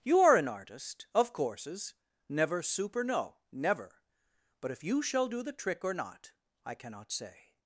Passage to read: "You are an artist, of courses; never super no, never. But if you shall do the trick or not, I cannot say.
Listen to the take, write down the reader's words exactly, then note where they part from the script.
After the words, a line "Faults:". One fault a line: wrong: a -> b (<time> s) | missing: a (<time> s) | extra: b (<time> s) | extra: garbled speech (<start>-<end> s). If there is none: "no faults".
"You are an artist, of courses; never super no, never. But if you shall do the trick or not, I cannot say.
Faults:
no faults